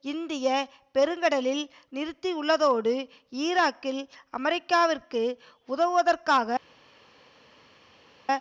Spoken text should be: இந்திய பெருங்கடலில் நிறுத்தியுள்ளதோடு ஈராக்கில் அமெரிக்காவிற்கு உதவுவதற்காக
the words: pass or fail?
pass